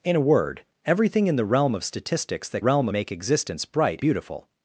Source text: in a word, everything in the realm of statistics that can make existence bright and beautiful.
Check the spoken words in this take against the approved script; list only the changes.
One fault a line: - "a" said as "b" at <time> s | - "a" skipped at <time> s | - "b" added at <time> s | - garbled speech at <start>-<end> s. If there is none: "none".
- "can" said as "realm" at 2.6 s
- "and" skipped at 4.0 s